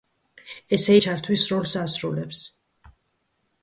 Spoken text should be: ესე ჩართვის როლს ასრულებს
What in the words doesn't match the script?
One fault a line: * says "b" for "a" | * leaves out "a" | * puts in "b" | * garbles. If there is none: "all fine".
all fine